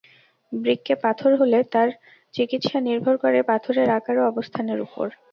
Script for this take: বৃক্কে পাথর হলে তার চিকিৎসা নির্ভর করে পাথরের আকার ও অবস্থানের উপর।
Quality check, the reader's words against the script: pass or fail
pass